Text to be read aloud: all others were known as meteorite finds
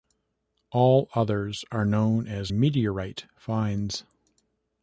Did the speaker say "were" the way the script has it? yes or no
no